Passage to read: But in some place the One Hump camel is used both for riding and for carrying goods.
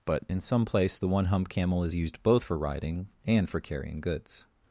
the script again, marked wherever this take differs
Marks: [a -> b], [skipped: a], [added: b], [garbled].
But in some place the One Hump camel is used both for riding and for carrying goods.